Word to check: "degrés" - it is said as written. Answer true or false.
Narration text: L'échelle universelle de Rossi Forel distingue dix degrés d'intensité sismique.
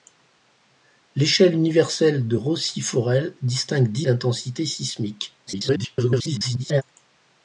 false